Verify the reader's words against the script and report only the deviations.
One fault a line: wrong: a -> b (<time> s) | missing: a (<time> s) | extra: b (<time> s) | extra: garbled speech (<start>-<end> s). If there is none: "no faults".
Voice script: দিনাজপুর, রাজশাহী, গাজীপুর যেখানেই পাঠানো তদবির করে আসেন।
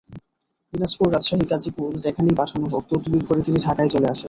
extra: হোক (2.7 s)
extra: তিনি ঢাকায় চলে (3.4 s)